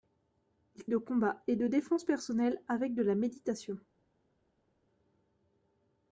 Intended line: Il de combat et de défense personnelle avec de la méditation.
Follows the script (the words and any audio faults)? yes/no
yes